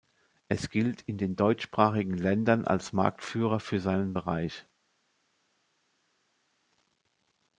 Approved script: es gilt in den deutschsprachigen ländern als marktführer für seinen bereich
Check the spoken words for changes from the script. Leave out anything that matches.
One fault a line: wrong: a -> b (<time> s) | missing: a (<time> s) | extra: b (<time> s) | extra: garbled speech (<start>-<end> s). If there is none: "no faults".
no faults